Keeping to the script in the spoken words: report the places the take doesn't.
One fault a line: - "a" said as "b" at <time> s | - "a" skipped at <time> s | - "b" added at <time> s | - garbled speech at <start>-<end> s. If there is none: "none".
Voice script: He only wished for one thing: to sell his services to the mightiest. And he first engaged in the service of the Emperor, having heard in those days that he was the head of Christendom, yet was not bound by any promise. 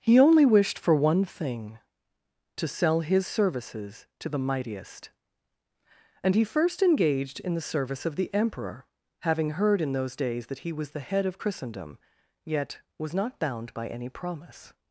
none